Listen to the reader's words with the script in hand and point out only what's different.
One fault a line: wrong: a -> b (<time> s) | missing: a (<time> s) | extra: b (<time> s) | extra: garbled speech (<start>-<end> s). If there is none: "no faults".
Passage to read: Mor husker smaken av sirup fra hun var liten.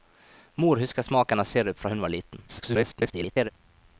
extra: garbled speech (2.5-3.5 s)